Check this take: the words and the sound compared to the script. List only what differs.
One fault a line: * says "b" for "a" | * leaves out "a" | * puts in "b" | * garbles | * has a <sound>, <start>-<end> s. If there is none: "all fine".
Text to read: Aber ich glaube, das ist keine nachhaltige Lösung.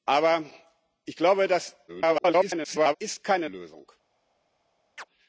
* garbles
* leaves out "nachhaltige"
* has a chirp, 5.0-5.0 s